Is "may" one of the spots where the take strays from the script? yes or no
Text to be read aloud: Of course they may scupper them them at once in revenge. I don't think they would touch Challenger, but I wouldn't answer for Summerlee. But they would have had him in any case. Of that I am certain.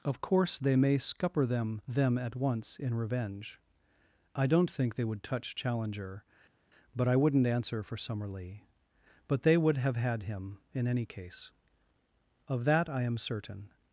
no